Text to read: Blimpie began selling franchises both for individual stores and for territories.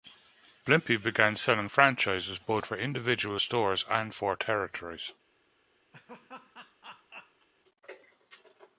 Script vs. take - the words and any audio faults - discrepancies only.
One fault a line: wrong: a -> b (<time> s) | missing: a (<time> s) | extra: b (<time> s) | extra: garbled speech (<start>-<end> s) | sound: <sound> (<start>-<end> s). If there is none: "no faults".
sound: laugh (5.9-7.5 s)